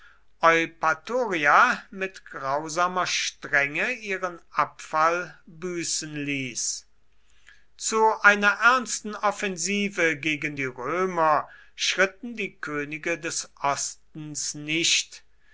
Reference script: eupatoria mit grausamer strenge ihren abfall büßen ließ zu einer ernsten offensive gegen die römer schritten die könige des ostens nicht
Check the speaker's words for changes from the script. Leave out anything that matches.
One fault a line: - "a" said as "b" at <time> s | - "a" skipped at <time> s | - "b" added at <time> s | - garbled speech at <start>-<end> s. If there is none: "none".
none